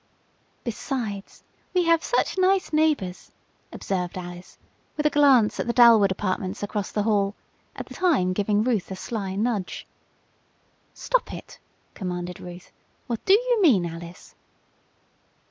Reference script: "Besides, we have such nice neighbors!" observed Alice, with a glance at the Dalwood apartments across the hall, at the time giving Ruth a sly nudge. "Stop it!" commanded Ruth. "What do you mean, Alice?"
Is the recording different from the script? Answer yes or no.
no